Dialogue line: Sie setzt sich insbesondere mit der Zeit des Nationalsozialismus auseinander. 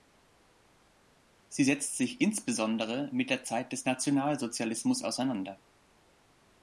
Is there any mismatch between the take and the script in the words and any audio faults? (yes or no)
no